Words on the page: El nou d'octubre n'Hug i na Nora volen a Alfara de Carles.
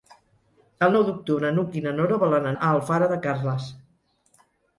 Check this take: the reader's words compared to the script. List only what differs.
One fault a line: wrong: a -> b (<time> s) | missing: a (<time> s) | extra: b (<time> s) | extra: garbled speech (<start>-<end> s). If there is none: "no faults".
no faults